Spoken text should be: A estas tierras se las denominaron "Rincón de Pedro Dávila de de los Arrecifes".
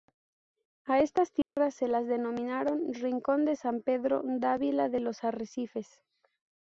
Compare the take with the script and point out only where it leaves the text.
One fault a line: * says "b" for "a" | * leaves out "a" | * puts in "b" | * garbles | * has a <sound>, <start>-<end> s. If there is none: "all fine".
* has a dropout, 1.4-1.6 s
* puts in "San"
* leaves out "de"